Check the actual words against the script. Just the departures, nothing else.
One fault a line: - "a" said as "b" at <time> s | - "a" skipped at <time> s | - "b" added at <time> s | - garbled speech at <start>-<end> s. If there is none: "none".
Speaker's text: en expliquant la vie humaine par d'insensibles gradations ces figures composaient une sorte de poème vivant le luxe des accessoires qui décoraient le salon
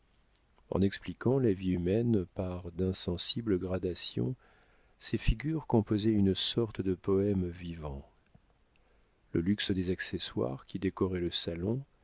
none